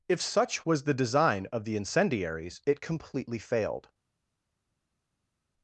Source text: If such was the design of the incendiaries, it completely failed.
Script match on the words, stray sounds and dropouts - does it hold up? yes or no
yes